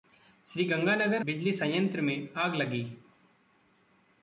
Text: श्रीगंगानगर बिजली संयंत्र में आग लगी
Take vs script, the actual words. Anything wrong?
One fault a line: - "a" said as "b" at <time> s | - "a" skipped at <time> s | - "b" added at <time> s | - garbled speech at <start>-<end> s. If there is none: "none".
none